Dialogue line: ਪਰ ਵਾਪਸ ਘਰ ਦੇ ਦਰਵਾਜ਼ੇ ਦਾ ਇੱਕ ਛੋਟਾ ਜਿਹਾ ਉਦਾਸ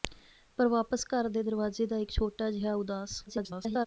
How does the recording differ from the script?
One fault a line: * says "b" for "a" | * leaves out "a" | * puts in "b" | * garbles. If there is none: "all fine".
* garbles